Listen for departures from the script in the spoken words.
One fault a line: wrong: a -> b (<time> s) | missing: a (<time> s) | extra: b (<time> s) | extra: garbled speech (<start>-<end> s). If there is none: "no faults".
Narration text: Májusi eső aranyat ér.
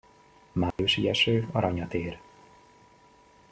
no faults